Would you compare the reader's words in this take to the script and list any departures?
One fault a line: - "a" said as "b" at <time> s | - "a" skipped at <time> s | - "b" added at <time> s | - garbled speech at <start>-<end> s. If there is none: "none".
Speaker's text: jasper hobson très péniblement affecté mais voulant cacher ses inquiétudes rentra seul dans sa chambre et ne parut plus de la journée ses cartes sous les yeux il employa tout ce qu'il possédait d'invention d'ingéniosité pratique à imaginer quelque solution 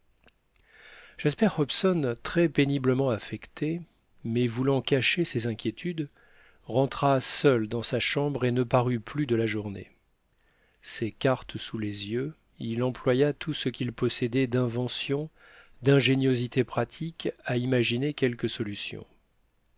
none